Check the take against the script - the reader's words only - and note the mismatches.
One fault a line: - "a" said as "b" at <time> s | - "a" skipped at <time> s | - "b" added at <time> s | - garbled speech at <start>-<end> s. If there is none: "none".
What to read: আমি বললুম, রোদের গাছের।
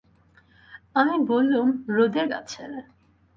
none